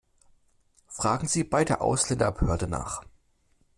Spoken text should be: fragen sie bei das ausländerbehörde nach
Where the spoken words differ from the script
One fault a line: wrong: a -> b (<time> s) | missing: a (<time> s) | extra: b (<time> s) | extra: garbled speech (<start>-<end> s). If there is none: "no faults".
wrong: das -> der (1.7 s)